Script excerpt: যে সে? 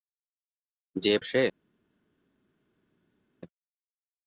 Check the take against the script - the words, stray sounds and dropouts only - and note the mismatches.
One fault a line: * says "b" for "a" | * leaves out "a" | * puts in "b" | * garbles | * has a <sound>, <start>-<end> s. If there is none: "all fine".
all fine